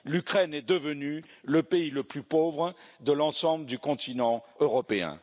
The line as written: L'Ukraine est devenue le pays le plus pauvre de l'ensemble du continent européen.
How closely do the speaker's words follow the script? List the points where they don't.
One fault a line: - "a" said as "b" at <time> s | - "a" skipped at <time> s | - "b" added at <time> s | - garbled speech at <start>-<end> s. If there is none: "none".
none